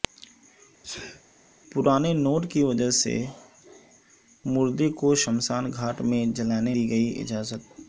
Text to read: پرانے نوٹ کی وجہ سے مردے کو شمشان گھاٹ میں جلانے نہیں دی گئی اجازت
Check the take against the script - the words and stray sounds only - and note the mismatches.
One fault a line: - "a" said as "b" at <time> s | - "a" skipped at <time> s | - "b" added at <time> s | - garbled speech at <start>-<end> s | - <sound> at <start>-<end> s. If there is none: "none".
- sneeze at 0.8-1.2 s
- "نہیں" skipped at 6.7 s